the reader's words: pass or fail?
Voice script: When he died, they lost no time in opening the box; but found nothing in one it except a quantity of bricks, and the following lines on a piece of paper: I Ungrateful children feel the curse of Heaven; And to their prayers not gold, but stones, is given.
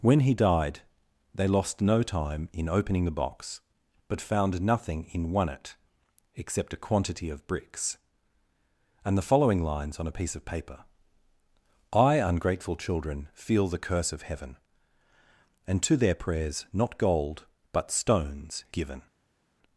fail